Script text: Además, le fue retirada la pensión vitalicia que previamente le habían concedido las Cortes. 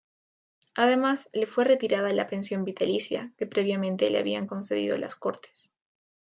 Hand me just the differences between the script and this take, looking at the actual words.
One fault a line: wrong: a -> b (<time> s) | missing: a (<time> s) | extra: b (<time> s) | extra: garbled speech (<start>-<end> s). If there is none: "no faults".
no faults